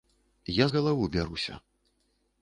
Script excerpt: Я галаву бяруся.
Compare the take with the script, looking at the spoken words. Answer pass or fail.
pass